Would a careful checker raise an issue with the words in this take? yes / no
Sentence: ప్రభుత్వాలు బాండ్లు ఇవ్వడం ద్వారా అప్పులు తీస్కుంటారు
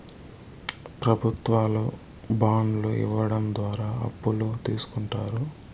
no